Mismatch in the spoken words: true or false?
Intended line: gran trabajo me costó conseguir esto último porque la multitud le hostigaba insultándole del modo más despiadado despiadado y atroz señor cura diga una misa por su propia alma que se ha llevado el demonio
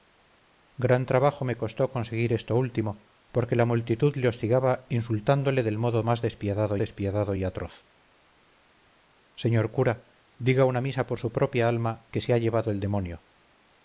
false